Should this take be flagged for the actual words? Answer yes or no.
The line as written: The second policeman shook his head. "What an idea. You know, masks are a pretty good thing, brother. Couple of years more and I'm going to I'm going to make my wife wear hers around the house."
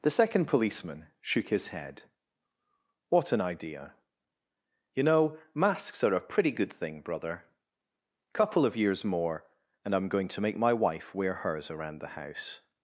yes